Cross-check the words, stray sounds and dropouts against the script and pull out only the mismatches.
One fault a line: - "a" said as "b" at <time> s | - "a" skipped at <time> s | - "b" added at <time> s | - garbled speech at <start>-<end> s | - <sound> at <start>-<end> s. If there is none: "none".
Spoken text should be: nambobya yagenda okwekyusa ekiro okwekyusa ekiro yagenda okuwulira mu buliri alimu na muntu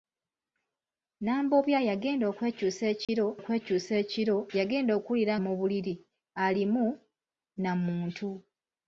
- dropout at 3.0-3.1 s